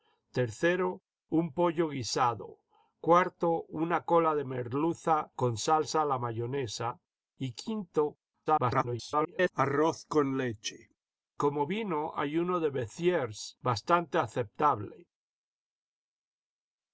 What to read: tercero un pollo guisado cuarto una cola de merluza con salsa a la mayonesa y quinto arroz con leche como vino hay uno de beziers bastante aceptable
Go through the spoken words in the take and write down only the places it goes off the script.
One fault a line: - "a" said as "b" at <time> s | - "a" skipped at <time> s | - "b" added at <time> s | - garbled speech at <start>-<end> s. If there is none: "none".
- garbled speech at 8.5-9.5 s